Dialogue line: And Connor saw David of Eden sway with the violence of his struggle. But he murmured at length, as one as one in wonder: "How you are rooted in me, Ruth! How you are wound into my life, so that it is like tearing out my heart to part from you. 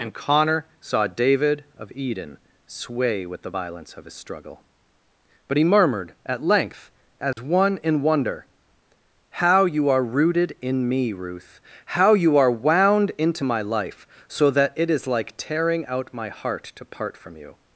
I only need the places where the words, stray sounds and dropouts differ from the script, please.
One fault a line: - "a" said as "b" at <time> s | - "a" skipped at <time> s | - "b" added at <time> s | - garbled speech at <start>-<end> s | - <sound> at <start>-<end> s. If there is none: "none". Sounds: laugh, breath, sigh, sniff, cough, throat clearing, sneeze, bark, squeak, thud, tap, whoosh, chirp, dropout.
- dropout at 7.3-7.4 s
- "as one" skipped at 7.8 s